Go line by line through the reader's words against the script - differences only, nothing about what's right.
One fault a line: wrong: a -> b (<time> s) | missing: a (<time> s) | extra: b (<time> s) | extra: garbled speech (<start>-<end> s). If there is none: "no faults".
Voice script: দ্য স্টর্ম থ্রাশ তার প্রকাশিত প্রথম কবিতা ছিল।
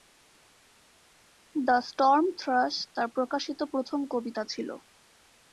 no faults